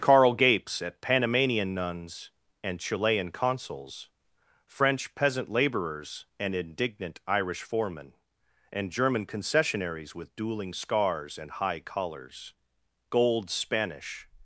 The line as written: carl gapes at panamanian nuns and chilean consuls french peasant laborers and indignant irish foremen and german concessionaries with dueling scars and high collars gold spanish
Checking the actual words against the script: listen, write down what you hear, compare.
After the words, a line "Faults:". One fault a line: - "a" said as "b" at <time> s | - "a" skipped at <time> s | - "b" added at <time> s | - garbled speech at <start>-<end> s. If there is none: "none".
carl gapes at panamanian nuns and chilean consuls french peasant laborers and indignant irish foremen and german concessionaries with dueling scars and high collars gold spanish
Faults:
none